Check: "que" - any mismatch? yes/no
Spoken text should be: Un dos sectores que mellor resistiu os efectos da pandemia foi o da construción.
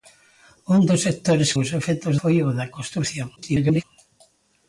yes